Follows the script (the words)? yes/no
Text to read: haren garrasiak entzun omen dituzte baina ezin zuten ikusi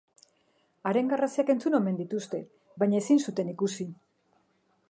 yes